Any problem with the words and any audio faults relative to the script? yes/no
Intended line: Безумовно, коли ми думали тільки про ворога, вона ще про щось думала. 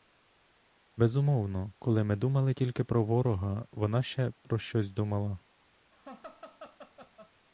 yes